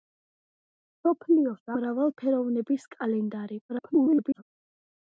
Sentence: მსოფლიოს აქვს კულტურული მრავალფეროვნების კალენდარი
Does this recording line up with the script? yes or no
no